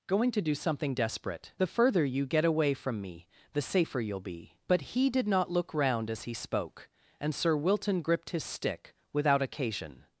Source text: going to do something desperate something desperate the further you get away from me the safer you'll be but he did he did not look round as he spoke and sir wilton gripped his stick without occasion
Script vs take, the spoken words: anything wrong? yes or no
yes